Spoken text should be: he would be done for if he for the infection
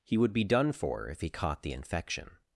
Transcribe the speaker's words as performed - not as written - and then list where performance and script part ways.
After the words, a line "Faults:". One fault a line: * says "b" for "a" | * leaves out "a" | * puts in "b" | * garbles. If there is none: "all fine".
he would be done for if he caught the infection
Faults:
* says "caught" for "for"